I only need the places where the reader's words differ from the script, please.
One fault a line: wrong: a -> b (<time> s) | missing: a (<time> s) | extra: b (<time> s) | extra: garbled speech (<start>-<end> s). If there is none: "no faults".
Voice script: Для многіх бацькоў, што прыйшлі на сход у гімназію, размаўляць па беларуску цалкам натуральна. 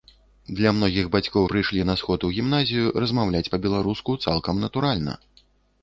missing: што (1.4 s)